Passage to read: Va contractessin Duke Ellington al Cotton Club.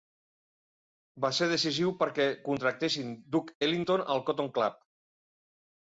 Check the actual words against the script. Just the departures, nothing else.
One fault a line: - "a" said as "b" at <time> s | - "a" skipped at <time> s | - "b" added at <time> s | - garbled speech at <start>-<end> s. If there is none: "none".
- "ser decisiu perquè" added at 1.4 s